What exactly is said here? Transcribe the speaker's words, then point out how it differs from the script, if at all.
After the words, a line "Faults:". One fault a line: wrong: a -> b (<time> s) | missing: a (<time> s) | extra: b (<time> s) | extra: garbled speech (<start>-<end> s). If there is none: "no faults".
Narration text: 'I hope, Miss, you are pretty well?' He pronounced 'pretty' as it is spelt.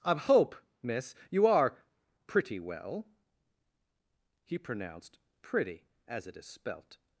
'I hope, Miss, you are pretty well?' He pronounced 'pretty' as it is spelt.
Faults:
no faults